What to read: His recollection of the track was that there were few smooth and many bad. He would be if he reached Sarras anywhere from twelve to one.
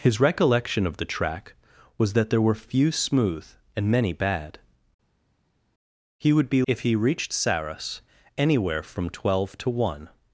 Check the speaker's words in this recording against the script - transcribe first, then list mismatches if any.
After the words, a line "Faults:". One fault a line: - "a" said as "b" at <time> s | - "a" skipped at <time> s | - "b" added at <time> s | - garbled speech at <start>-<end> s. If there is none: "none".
His recollection of the track was that there were few smooth and many bad. He would be if he reached Sarras anywhere from twelve to one.
Faults:
none